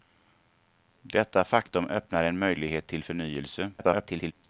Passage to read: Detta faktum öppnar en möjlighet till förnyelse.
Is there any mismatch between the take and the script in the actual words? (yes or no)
yes